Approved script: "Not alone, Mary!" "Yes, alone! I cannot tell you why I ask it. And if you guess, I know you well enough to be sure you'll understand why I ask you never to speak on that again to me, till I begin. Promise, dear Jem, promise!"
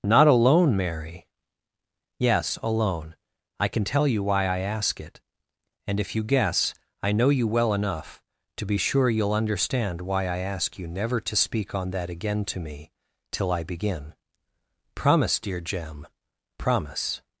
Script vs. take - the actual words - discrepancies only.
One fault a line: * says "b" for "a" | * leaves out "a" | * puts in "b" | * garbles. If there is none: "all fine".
* says "can" for "cannot"